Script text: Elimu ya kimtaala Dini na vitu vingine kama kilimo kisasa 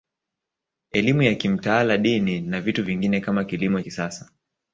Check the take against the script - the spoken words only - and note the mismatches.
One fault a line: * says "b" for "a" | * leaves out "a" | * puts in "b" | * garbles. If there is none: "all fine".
all fine